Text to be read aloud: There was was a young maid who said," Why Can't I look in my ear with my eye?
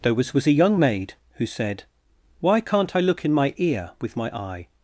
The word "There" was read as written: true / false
true